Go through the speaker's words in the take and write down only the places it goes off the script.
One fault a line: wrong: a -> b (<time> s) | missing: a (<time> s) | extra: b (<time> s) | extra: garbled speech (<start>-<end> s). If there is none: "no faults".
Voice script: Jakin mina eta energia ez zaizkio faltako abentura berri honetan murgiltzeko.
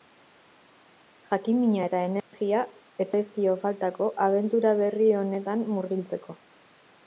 no faults